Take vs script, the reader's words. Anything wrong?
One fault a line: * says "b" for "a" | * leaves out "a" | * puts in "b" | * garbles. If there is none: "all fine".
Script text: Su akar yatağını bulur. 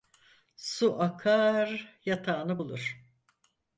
all fine